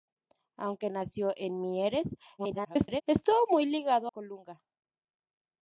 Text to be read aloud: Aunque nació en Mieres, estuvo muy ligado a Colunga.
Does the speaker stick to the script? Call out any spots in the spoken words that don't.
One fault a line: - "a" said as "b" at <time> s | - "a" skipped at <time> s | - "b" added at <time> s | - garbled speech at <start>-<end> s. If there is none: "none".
- garbled speech at 2.4-3.0 s
- "a" skipped at 4.1 s